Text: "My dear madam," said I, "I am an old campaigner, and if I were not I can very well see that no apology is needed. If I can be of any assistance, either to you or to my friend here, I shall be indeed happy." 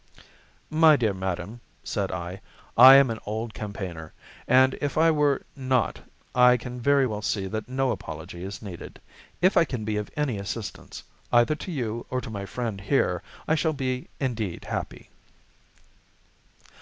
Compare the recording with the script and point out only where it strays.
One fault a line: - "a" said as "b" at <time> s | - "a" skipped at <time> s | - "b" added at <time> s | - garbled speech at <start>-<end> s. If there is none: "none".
none